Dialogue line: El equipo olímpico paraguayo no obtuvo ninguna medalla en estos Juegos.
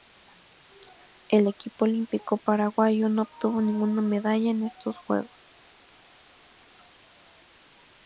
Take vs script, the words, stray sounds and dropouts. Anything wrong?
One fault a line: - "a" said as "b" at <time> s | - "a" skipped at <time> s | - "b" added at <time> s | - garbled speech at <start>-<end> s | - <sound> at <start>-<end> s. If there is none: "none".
none